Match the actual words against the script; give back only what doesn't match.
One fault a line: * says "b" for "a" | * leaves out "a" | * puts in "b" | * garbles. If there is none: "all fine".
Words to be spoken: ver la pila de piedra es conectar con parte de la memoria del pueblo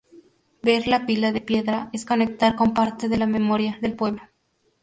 all fine